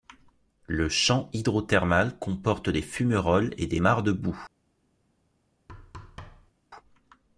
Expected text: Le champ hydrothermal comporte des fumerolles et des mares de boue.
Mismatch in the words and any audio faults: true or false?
true